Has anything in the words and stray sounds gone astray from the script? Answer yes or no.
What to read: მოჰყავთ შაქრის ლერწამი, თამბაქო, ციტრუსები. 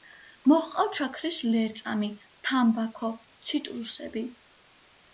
no